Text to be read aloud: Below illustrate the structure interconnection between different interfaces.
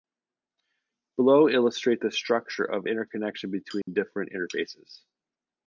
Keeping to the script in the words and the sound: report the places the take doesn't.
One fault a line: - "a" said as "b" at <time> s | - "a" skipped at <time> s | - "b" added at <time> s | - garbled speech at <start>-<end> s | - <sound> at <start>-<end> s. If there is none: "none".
- "of" added at 2.6 s
- dropout at 3.8-3.9 s